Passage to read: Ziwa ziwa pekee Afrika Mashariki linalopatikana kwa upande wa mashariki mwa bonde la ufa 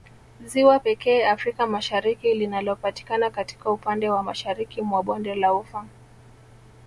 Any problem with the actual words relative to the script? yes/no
yes